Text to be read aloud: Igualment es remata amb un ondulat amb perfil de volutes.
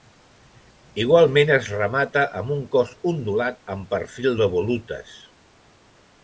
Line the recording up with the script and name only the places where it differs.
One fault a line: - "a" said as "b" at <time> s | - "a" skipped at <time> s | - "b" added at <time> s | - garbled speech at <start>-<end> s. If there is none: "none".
- "cos" added at 2.8 s